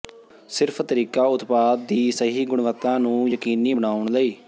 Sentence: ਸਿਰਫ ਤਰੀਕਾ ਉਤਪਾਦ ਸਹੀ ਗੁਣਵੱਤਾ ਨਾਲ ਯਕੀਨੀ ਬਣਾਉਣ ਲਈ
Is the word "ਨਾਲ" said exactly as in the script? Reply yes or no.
no